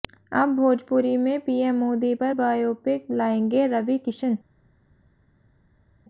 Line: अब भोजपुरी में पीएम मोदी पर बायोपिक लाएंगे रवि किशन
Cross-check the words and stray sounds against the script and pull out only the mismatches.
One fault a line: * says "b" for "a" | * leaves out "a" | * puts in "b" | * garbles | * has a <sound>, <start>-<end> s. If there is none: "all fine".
all fine